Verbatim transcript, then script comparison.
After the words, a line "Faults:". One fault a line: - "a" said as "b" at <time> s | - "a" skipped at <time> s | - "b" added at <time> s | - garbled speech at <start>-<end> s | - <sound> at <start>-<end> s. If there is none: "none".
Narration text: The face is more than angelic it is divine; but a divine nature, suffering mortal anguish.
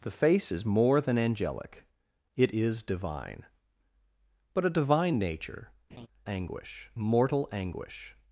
The face is more than angelic it is divine; but a divine nature, anguish mortal anguish.
Faults:
- laugh at 5.9-6.1 s
- "suffering" said as "anguish" at 6.3 s